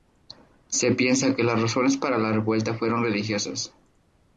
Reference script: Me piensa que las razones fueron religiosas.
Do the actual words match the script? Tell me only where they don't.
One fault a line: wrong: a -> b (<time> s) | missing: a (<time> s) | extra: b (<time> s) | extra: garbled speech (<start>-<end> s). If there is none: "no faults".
wrong: Me -> Se (0.7 s)
extra: para la revuelta (2.0 s)